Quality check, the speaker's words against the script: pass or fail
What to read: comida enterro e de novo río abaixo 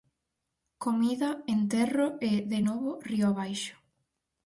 pass